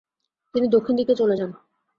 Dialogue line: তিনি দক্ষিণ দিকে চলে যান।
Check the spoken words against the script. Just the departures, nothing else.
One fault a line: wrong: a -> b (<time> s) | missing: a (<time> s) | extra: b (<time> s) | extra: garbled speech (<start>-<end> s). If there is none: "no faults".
no faults